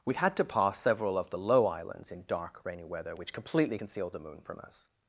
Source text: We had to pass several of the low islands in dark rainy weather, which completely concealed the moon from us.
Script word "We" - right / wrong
right